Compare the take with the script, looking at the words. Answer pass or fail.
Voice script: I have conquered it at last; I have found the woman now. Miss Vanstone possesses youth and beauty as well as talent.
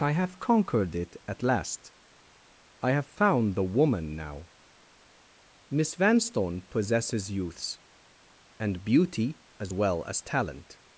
fail